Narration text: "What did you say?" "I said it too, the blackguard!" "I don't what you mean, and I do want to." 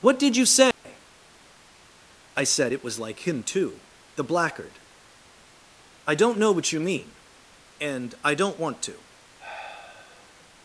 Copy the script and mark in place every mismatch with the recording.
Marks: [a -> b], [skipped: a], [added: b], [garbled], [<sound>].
"What did you say?" [dropout] "I said it [added: was like him] too, the blackguard!" "I don't [added: know] what you mean, and I [do -> don't] want to." [sigh]